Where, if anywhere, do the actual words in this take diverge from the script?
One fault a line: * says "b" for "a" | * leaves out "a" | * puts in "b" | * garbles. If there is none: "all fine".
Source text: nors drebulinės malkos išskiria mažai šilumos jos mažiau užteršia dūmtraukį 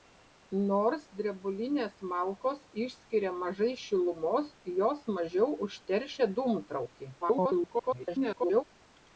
* garbles